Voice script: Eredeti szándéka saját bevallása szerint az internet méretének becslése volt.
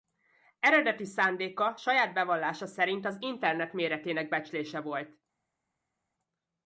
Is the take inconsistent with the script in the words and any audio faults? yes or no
no